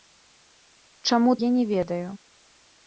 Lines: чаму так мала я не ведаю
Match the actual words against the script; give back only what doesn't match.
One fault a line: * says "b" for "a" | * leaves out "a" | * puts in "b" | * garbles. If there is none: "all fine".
* leaves out "так мала"